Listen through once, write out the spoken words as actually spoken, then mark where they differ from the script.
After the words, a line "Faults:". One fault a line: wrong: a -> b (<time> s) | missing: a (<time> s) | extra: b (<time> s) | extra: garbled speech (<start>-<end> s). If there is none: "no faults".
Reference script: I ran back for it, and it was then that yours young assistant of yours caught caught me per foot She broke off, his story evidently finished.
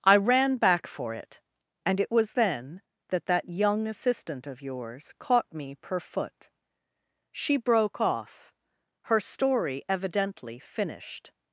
I ran back for it, and it was then that that young assistant of yours caught me per foot She broke off, her story evidently finished.
Faults:
wrong: yours -> that (3.3 s)
missing: caught (5.5 s)
wrong: his -> her (9.0 s)